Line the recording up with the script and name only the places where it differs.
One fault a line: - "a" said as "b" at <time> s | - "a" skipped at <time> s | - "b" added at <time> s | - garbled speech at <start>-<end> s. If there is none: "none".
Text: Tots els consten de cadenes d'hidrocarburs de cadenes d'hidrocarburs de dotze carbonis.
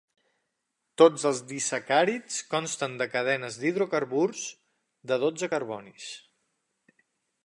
- "disacàrids" added at 1.5 s
- "cadenes d'hidrocarburs de" skipped at 5.2 s